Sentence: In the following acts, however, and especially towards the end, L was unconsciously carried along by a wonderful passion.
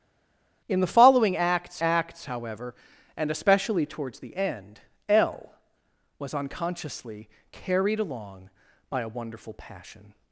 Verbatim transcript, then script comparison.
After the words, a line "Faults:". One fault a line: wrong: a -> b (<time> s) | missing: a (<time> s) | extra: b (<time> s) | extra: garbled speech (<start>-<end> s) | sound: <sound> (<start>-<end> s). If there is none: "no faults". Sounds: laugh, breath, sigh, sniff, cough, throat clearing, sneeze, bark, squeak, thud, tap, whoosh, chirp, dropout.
In the following acts acts, however, and especially towards the end, L was unconsciously carried along by a wonderful passion.
Faults:
extra: acts (1.8 s)